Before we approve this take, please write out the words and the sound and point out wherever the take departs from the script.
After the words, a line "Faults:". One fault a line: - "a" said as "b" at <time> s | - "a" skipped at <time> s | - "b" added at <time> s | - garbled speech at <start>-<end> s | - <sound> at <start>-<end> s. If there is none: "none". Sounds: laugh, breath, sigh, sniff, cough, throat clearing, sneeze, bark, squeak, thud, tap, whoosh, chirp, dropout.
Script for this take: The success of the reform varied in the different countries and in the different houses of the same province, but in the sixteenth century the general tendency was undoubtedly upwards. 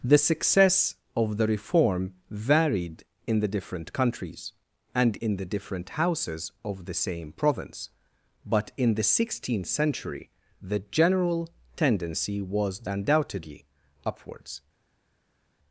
The success of the reform varied in the different countries and in the different houses of the same province, but in the sixteenth century the general tendency was undoubtedly upwards.
Faults:
none